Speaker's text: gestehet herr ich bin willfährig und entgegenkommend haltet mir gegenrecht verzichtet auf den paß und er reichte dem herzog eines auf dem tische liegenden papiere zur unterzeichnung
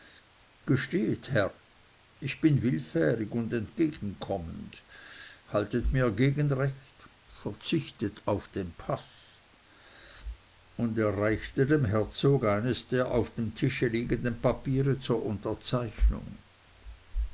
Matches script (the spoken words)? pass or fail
fail